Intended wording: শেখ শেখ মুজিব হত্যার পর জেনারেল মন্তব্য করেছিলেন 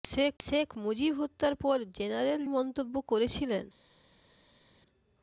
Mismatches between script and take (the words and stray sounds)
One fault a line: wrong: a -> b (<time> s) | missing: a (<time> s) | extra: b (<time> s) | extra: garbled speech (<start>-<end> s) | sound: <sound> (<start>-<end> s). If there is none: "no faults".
no faults